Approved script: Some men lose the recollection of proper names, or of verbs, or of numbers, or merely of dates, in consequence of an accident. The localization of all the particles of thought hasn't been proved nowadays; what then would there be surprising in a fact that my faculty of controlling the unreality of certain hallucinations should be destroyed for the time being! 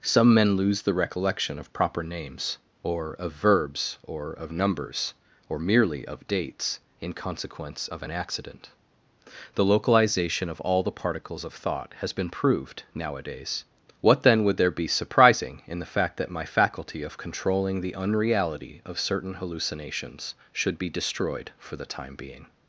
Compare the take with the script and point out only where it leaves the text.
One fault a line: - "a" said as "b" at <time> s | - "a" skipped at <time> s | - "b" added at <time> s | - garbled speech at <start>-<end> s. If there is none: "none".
- "hasn't" said as "has" at 12.0 s
- "a" said as "the" at 15.8 s